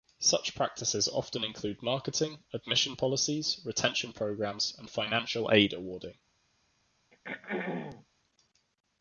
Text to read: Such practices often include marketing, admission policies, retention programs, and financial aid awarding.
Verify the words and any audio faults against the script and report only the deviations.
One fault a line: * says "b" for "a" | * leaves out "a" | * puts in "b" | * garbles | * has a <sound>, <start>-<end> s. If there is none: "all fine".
* has a throat clearing, 7.1-8.1 s